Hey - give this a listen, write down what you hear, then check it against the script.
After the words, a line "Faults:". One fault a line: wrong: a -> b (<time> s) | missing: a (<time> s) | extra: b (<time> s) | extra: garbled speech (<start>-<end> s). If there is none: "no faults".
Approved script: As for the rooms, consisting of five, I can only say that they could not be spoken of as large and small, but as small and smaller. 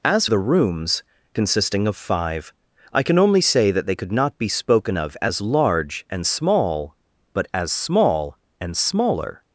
As the rooms, consisting of five, I can only say that they could not be spoken of as large and small, but as small and smaller.
Faults:
missing: for (0.2 s)